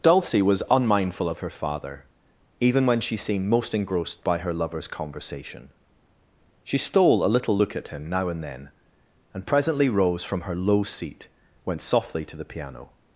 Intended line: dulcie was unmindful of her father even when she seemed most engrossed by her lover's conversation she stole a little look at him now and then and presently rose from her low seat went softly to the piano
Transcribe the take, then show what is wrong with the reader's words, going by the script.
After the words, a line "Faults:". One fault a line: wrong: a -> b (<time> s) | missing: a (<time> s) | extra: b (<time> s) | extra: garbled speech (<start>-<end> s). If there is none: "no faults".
dulcie was unmindful of her father even when she seemed most engrossed by her lover's conversation she stole a little look at him now and then and presently rose from her low seat went softly to the piano
Faults:
no faults